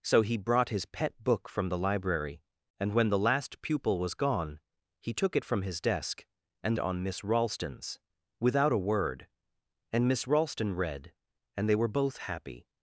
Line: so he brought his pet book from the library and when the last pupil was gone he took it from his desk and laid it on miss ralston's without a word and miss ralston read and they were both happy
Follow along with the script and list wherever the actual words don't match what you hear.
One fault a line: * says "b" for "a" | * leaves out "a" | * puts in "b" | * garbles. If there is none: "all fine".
* leaves out "laid it"